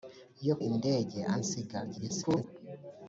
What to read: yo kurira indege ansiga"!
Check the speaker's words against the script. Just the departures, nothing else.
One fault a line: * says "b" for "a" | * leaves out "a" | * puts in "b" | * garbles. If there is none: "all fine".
* leaves out "kurira"
* garbles